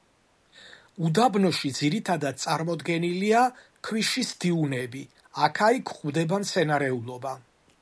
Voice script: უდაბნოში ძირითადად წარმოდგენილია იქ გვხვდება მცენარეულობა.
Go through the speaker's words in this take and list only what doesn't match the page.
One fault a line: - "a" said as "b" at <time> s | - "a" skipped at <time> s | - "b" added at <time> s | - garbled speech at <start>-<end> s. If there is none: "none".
- "ქვიშის დიუნები აქა" added at 3.9 s